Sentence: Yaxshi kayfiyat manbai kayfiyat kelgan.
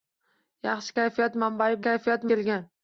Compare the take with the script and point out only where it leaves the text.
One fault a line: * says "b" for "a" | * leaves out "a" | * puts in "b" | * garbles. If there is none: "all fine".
all fine